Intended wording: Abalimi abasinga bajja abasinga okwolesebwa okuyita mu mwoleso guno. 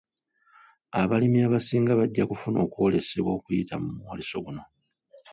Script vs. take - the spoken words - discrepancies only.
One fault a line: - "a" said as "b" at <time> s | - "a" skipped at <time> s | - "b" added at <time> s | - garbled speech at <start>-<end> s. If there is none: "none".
- "abasinga" said as "kufuna" at 2.3 s